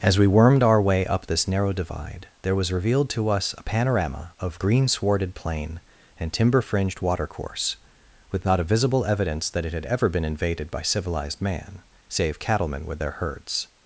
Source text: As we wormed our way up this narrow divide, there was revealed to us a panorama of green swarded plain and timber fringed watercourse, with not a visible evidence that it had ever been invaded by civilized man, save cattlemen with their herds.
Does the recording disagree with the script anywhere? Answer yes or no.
no